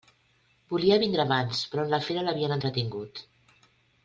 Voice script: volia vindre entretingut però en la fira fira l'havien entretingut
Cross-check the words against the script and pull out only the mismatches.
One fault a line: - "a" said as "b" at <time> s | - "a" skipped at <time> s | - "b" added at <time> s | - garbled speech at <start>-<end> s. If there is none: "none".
- "entretingut" said as "abans" at 1.2 s
- "fira" skipped at 2.2 s